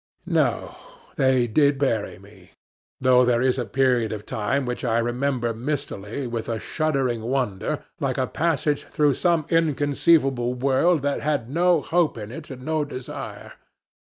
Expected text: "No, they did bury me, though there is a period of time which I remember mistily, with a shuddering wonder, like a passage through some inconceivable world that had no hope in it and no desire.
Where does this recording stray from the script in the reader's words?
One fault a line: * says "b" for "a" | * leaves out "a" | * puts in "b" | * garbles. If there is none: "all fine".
all fine